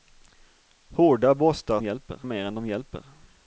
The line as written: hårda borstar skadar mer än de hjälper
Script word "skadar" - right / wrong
wrong